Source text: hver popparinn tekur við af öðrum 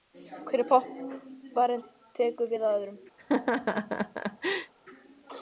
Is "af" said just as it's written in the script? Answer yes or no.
yes